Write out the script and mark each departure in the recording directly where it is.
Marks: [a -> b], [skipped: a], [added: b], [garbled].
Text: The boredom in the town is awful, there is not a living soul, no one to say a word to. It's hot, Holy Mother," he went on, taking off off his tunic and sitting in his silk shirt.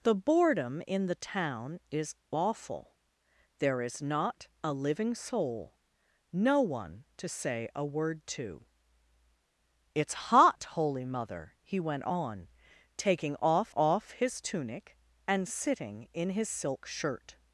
The boredom in the town is awful, there is not a living soul, no one to say a word to. It's hot, Holy Mother," he went on, taking off off his tunic and sitting in his silk shirt.